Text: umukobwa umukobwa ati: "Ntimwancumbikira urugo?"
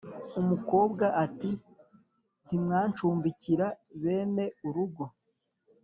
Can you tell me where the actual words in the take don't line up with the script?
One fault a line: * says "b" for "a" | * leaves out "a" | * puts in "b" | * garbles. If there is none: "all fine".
* leaves out "umukobwa"
* puts in "bene"